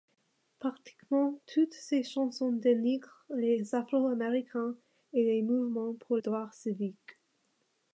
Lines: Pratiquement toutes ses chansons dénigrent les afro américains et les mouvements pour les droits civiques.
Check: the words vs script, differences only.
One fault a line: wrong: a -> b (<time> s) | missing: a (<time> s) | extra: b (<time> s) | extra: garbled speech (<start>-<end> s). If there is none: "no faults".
missing: les (6.2 s)